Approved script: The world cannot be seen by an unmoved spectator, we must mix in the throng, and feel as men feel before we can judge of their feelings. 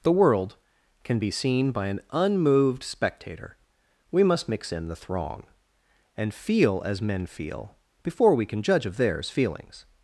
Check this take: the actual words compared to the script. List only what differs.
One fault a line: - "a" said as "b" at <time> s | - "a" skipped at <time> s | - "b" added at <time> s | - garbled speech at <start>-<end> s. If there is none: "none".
- "cannot" said as "can" at 1.0 s
- "their" said as "theirs" at 9.0 s